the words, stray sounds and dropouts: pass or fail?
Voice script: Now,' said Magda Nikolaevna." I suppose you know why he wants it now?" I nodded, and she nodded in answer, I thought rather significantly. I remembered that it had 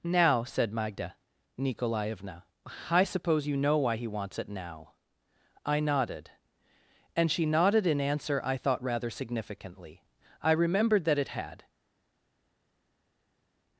pass